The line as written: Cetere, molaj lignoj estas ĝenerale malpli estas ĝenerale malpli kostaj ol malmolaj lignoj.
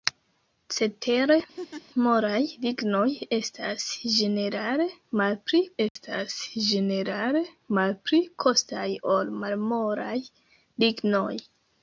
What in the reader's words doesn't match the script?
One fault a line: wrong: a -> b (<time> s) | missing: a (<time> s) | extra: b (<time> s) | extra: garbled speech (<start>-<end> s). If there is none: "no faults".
no faults